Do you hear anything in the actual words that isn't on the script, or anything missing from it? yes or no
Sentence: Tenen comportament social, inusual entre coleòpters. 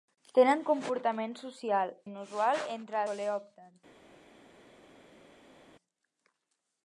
no